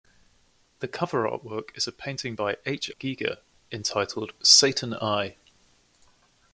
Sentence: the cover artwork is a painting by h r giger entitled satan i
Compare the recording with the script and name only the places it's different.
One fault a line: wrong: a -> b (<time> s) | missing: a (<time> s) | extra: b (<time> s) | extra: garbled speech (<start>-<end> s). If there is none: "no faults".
missing: r (2.9 s)